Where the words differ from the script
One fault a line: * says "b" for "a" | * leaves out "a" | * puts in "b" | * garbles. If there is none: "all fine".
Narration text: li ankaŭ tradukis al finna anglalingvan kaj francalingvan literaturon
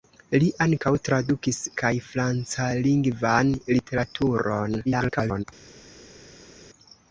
* leaves out "al finna anglalingvan"
* garbles